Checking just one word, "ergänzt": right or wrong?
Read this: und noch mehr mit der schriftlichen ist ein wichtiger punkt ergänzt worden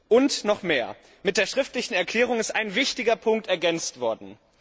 right